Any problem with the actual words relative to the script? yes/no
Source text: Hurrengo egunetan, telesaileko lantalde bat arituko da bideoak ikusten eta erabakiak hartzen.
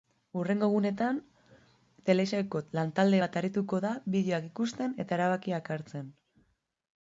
no